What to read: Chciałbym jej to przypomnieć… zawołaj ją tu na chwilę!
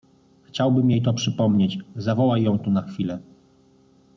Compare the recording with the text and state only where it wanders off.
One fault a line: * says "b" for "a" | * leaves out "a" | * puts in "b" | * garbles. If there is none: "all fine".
all fine